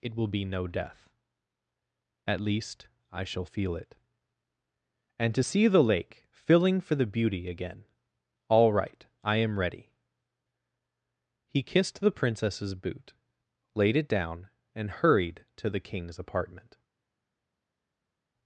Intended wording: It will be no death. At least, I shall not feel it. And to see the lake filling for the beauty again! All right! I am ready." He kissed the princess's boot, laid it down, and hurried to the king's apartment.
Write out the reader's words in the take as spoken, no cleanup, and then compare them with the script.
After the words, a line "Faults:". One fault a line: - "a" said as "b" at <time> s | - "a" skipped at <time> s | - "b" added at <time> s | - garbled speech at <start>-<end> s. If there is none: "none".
It will be no death. At least, I shall feel it. And to see the lake filling for the beauty again! All right! I am ready." He kissed the princess's boot, laid it down, and hurried to the king's apartment.
Faults:
- "not" skipped at 3.5 s